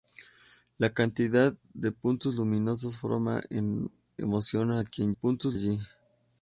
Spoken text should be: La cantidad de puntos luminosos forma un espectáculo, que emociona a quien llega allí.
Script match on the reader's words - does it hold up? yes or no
no